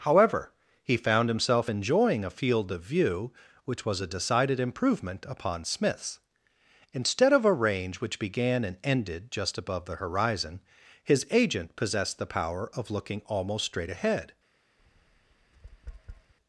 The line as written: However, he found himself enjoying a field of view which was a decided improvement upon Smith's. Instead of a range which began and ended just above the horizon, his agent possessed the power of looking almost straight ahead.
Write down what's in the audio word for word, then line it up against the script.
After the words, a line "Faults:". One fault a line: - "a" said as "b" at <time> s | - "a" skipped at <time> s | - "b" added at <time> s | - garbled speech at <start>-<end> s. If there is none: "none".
However, he found himself enjoying a field of view which was a decided improvement upon Smith's. Instead of a range which began and ended just above the horizon, his agent possessed the power of looking almost straight ahead.
Faults:
none